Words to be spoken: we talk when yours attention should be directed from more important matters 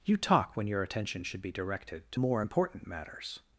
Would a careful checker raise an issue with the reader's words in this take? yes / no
yes